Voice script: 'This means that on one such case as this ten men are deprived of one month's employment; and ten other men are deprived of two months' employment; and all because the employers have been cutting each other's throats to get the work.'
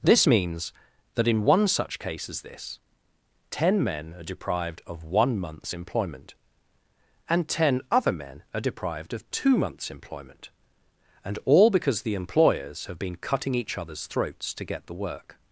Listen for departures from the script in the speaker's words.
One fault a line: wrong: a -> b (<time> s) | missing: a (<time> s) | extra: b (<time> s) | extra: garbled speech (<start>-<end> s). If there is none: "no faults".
wrong: on -> in (1.3 s)